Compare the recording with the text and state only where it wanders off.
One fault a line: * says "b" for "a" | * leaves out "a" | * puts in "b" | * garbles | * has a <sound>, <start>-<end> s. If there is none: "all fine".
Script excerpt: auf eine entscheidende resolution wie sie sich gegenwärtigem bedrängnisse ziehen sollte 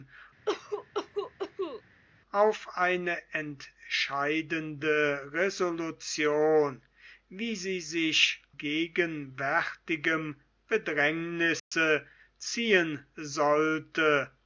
* has a cough, 0.5-1.8 s
* has a dropout, 11.6-11.7 s